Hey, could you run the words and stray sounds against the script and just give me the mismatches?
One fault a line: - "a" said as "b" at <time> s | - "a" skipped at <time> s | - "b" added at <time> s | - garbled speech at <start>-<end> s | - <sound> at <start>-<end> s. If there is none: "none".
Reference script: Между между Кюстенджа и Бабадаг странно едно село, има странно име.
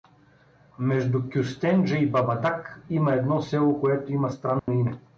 - "между" skipped at 1.3 s
- "странно" said as "има" at 2.9 s
- "което" added at 3.8 s
- dropout at 4.6-4.7 s